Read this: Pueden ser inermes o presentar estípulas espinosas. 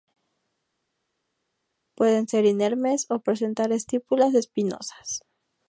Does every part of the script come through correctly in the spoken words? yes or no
yes